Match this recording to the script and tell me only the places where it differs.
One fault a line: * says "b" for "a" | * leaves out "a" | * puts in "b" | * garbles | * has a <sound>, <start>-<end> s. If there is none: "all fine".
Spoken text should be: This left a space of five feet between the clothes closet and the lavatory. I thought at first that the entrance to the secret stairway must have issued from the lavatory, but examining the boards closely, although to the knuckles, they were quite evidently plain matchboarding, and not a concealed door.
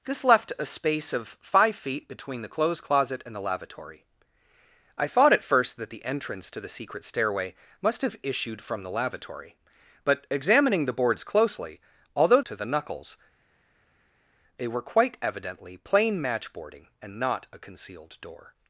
all fine